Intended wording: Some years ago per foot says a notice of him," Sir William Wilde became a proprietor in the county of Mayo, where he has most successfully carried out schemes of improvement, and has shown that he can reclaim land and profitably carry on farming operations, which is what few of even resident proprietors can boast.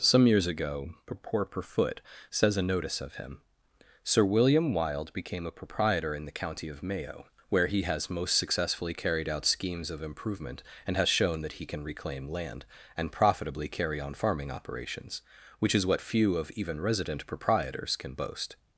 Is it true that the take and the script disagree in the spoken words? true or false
true